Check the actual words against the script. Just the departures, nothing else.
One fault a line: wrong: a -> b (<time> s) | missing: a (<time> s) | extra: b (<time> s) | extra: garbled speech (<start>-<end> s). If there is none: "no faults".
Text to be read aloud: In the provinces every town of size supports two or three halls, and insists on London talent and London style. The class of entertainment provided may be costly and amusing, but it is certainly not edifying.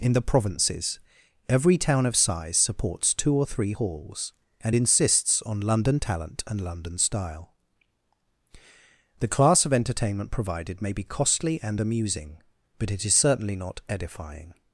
no faults